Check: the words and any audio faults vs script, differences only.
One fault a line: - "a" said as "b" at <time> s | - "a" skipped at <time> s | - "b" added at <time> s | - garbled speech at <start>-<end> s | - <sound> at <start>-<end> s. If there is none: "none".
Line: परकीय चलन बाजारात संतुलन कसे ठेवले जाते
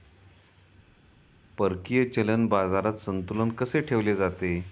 none